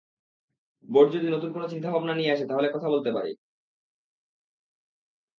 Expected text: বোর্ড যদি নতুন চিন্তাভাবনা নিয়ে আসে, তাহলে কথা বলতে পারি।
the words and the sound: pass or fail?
fail